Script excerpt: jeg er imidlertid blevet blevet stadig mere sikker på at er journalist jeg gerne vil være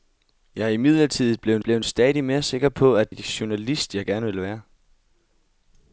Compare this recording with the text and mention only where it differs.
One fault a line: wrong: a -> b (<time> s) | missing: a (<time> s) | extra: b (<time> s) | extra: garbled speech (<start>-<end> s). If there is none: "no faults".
no faults